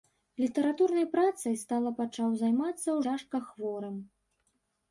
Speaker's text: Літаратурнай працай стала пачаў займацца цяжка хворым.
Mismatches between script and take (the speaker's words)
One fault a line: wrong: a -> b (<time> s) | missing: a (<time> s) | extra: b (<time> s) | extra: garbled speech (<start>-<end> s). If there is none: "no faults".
no faults